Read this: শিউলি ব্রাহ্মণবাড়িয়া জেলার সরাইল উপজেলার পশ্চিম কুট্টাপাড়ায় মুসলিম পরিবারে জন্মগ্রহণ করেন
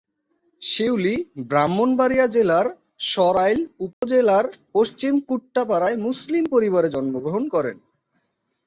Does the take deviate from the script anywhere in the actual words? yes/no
no